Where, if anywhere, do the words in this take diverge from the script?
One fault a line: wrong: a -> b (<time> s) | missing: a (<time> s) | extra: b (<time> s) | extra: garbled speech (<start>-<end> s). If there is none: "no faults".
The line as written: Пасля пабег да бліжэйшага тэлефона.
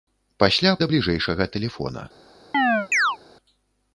missing: пабег (0.7 s)